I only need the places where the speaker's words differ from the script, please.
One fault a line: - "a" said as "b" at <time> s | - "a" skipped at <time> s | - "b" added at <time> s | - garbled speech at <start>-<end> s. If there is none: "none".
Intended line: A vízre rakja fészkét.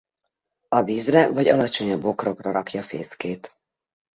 - "vagy alacsonyabb bokrokra" added at 1.3 s